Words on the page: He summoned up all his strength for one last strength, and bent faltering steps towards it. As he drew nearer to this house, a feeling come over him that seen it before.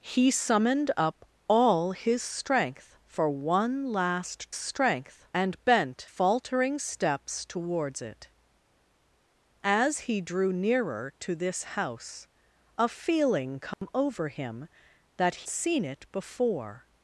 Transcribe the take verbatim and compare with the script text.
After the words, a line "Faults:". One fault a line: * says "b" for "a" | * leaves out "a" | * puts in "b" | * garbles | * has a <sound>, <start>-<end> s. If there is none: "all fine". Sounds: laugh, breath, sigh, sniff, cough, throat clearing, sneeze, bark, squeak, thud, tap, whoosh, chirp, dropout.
He summoned up all his strength for one last strength, and bent faltering steps towards it. As he drew nearer to this house, a feeling come over him that seen it before.
Faults:
* has a dropout, 13.7-13.8 s